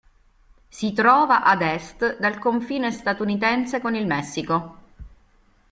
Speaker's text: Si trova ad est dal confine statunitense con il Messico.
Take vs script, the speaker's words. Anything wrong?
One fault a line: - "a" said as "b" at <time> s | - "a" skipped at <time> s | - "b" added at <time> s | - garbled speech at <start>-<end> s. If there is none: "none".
none